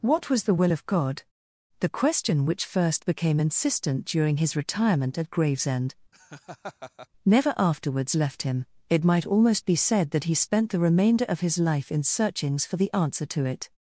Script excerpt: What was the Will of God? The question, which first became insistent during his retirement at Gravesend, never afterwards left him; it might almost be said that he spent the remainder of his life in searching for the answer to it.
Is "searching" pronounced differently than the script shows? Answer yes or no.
yes